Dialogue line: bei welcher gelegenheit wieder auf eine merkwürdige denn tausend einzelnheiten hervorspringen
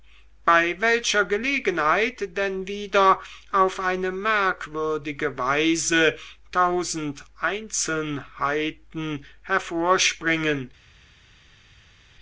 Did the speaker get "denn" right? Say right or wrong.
wrong